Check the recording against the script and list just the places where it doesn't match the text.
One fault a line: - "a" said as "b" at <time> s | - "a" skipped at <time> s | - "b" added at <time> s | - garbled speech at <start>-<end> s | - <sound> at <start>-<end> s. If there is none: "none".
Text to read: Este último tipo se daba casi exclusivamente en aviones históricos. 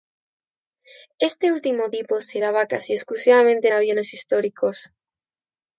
none